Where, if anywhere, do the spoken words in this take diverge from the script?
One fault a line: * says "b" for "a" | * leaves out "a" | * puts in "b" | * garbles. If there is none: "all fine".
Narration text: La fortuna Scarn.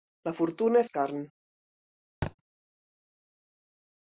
all fine